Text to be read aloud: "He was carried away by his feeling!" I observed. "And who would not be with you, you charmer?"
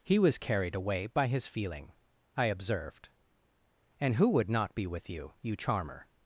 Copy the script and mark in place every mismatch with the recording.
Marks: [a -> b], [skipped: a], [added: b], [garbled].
"He was carried away by his feeling!" I observed. "And who would not be with you, you charmer?"